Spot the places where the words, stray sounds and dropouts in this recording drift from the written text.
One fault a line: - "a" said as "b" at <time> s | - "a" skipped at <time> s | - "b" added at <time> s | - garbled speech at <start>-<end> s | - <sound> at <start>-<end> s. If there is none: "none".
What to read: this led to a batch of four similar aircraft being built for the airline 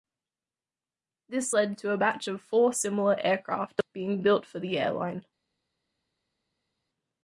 none